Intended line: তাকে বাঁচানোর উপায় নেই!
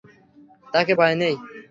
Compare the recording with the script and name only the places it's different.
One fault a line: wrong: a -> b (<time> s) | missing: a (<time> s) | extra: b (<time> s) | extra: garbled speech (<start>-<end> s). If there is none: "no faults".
missing: বাঁচানোর (0.9 s)